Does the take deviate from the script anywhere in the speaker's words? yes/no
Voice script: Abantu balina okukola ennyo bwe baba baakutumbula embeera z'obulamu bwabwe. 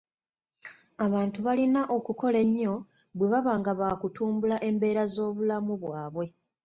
yes